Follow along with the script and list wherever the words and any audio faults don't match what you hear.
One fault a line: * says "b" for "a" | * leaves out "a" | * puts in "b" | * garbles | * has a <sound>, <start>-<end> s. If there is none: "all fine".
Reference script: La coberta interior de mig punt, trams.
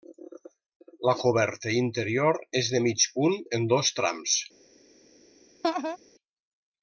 * puts in "és"
* puts in "en dos"
* has a laugh, 5.6-6.0 s